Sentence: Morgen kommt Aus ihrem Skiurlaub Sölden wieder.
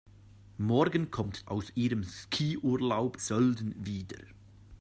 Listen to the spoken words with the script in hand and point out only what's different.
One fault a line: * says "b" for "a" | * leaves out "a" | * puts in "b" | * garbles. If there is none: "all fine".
all fine